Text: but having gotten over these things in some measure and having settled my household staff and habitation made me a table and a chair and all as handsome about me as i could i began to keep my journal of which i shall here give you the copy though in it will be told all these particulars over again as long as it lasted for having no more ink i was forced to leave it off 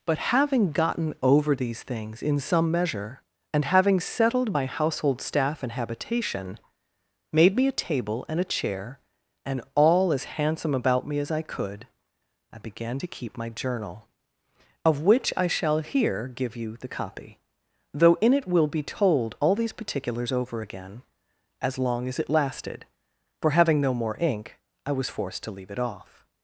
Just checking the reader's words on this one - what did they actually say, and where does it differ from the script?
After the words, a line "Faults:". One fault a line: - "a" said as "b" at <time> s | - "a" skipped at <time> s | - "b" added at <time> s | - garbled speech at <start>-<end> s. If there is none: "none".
but having gotten over these things in some measure and having settled my household staff and habitation made me a table and a chair and all as handsome about me as i could i began to keep my journal of which i shall here give you the copy though in it will be told all these particulars over again as long as it lasted for having no more ink i was forced to leave it off
Faults:
none